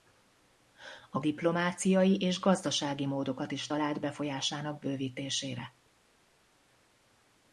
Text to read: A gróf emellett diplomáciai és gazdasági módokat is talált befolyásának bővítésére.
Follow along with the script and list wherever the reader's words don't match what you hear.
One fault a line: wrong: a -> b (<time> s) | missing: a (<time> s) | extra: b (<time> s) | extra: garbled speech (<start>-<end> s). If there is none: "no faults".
missing: gróf emellett (1.2 s)